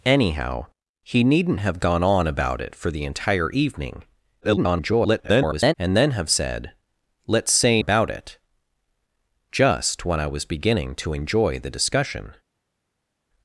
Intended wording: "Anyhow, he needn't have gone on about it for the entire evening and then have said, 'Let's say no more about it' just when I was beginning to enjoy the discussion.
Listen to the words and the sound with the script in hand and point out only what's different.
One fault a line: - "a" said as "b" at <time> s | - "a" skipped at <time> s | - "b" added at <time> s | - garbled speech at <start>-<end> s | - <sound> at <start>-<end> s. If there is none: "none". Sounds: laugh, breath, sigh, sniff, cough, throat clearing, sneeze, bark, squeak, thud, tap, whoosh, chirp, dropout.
- garbled speech at 4.4-5.7 s
- "no more" skipped at 7.8 s